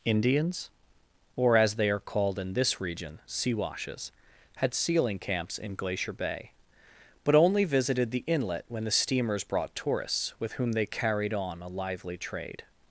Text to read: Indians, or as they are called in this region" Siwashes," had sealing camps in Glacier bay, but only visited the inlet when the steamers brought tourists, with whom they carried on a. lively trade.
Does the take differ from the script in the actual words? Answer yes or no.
no